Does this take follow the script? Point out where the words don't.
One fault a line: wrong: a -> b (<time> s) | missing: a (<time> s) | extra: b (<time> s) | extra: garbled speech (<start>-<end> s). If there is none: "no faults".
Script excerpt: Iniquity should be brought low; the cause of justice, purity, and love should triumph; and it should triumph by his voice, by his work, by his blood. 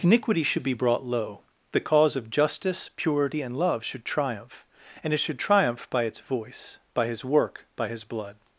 wrong: his -> its (6.0 s)